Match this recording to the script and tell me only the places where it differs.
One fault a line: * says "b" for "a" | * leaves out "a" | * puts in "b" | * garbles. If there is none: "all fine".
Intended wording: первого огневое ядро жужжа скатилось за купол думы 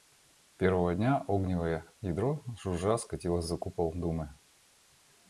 * puts in "дня"